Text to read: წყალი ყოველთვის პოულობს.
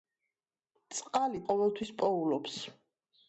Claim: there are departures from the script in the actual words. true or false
false